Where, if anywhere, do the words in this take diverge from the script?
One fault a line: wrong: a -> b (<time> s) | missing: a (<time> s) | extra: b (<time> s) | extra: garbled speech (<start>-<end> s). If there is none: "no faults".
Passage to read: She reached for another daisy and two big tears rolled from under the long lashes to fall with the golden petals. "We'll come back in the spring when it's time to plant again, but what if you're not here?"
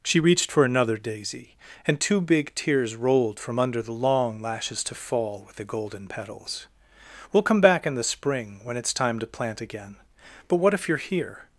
missing: not (11.0 s)